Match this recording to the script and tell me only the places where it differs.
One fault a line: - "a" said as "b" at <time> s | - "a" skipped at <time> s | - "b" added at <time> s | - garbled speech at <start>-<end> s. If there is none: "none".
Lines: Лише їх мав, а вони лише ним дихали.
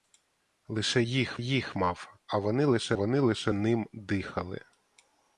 - "їх" added at 1.4 s
- "вони лише" added at 2.9 s